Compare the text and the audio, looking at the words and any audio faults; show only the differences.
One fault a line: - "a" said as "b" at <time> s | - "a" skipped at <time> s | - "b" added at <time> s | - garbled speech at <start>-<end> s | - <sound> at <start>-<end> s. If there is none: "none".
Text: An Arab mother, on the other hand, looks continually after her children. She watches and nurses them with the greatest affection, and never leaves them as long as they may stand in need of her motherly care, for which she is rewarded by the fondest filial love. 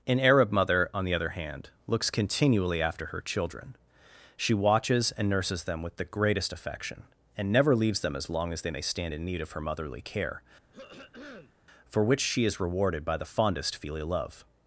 - throat clearing at 10.7-11.5 s